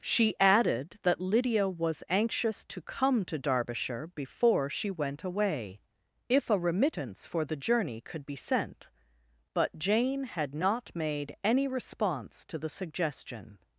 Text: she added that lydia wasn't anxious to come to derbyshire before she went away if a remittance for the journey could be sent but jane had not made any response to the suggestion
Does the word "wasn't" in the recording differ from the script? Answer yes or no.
yes